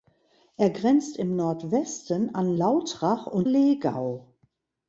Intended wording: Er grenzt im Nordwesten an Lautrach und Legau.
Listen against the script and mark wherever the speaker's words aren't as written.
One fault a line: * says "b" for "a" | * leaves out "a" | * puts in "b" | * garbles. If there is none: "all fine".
all fine